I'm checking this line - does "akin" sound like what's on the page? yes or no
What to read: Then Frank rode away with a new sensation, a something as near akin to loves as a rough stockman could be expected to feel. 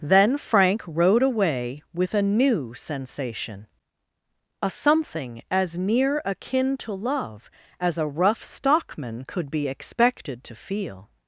yes